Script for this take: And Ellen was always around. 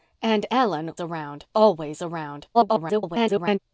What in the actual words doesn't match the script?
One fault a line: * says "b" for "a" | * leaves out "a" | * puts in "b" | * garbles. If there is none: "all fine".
* says "around" for "was"
* garbles